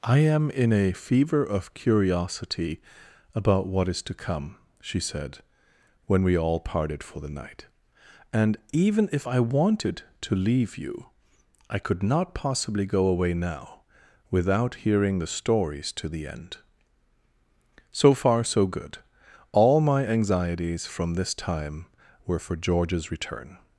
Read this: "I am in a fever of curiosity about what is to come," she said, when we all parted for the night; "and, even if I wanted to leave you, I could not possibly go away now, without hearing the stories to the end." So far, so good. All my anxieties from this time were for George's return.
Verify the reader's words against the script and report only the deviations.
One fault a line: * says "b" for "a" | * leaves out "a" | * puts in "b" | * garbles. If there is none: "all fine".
all fine